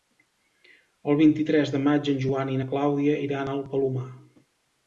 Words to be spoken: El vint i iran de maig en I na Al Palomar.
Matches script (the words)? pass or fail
fail